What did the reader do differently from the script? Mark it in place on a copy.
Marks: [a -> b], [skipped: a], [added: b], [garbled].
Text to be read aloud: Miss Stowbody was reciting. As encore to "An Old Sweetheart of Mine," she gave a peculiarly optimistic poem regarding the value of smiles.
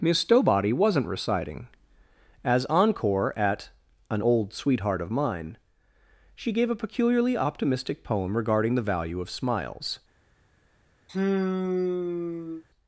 Miss Stowbody [was -> wasn't] reciting. As encore [to -> at] "An Old Sweetheart of Mine," she gave a peculiarly optimistic poem regarding the value of smiles.